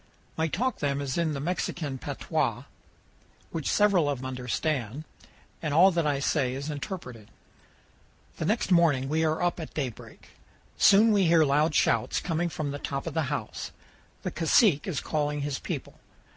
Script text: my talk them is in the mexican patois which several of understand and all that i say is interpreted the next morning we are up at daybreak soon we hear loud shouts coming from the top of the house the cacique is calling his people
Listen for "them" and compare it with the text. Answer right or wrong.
right